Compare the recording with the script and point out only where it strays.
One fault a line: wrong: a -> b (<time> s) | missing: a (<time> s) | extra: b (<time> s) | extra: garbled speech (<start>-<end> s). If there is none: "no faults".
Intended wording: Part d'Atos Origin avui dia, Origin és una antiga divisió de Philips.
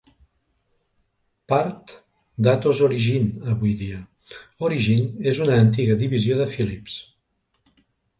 no faults